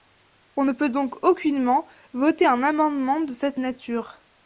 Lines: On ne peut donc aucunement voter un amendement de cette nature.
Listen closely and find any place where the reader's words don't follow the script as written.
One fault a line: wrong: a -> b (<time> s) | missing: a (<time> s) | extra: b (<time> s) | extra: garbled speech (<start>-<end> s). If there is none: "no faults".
no faults